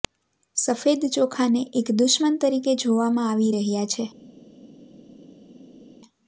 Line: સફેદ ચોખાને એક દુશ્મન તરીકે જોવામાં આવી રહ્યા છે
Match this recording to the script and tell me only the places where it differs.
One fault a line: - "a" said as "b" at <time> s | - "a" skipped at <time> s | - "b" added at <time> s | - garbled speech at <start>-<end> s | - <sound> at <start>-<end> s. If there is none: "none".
none